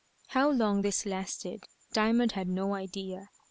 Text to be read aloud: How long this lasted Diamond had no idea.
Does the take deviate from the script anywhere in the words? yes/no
no